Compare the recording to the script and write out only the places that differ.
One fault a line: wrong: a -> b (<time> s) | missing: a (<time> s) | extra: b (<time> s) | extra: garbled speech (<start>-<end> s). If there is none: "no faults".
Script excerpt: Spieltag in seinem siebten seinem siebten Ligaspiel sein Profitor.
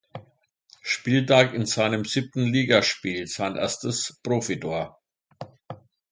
missing: seinem siebten (2.5 s)
extra: erstes (3.5 s)